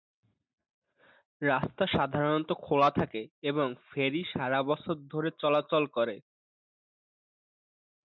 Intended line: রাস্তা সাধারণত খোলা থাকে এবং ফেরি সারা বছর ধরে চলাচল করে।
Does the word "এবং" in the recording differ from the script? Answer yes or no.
no